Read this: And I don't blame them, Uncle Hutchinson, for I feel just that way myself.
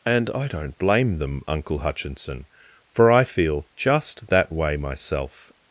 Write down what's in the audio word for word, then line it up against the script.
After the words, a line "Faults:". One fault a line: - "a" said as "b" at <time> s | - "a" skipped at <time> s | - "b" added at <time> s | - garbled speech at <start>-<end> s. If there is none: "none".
And I don't blame them, Uncle Hutchinson, for I feel just that way myself.
Faults:
none